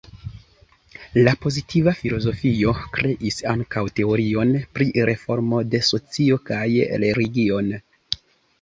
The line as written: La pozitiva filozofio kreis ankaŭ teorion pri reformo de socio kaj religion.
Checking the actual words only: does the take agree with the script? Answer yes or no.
yes